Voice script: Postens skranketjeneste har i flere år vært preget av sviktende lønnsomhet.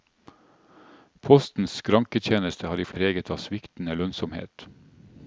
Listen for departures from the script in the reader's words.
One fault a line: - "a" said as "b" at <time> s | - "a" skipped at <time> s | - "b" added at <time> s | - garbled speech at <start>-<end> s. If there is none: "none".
- "flere år vært" skipped at 2.9 s